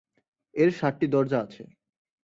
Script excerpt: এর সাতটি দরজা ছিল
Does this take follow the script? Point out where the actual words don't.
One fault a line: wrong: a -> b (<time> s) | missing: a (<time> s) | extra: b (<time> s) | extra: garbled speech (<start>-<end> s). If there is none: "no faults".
wrong: ছিল -> আছে (1.4 s)